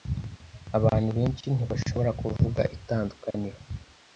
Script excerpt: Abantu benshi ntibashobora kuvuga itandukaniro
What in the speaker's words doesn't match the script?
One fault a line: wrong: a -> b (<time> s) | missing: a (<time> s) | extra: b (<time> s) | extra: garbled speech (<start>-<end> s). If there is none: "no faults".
no faults